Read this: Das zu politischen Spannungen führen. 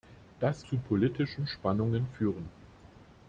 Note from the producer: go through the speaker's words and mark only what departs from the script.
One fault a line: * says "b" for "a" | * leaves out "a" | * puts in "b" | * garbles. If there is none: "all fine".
all fine